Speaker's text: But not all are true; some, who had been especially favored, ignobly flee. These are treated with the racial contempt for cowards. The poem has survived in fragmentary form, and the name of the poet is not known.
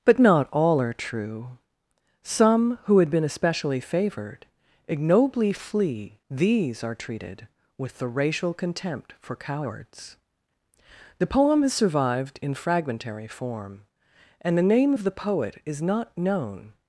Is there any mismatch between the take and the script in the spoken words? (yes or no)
no